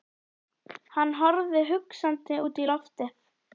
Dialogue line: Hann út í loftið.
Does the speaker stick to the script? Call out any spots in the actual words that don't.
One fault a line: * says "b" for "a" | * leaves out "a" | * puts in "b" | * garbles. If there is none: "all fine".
* puts in "horfði hugsandi"